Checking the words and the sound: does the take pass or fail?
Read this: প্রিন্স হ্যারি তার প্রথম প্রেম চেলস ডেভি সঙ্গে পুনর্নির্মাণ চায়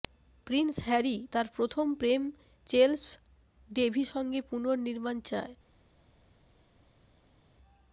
pass